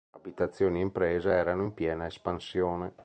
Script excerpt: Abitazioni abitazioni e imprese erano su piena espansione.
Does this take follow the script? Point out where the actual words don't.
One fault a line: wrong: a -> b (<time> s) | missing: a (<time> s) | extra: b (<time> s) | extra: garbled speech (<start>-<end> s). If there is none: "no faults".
missing: abitazioni (0.8 s)
wrong: su -> in (1.6 s)